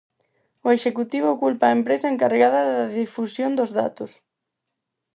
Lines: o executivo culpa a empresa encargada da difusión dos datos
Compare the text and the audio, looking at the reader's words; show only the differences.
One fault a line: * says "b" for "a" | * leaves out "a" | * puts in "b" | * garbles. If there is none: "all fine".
all fine